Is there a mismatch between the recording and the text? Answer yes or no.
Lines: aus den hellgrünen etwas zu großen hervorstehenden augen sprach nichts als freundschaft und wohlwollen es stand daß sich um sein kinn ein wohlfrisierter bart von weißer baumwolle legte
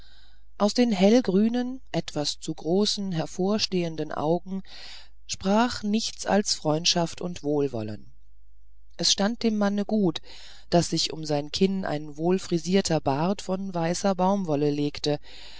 yes